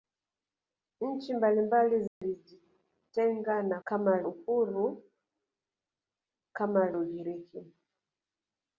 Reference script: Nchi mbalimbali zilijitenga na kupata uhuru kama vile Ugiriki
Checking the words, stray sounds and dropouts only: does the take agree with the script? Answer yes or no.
no